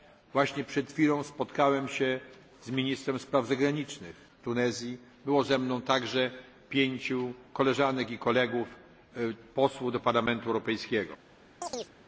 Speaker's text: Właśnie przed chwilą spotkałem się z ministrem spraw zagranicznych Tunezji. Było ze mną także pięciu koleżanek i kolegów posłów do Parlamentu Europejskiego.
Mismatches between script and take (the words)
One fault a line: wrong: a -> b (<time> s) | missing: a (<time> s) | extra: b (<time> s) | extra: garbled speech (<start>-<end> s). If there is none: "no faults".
no faults